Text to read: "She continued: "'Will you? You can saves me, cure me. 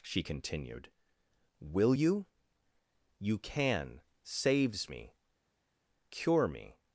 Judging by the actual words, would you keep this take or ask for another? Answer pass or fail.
pass